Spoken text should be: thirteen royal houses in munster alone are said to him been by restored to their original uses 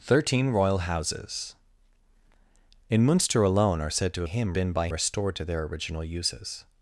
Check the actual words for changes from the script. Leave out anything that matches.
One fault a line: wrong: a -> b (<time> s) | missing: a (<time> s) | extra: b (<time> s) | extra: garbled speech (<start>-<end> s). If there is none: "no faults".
no faults